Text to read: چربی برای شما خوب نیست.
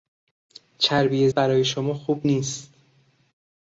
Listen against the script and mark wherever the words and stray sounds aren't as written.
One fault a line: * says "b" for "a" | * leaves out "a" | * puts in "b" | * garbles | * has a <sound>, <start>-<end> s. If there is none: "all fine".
all fine